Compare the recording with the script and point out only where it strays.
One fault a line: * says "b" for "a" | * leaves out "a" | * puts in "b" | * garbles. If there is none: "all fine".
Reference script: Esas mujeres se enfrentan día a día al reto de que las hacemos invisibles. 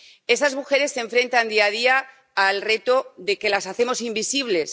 all fine